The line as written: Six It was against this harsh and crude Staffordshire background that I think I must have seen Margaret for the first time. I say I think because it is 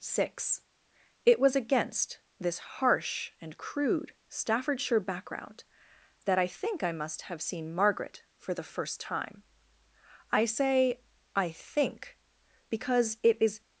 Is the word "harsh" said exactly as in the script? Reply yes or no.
yes